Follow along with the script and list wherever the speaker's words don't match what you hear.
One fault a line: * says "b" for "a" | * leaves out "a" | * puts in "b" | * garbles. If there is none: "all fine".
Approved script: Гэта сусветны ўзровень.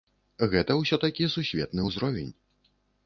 * puts in "ўсё такі"